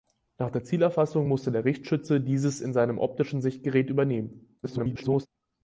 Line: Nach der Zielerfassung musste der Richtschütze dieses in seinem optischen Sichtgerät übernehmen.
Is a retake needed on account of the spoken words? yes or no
yes